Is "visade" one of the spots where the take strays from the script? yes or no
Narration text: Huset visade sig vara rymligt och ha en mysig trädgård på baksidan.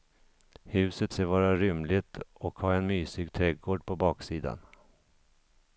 yes